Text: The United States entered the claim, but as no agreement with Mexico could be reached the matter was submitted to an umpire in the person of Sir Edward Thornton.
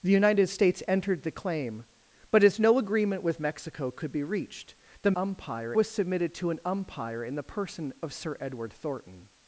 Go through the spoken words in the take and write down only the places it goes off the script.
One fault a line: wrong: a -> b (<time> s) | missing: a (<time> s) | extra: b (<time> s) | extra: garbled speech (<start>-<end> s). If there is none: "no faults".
wrong: matter -> umpire (5.1 s)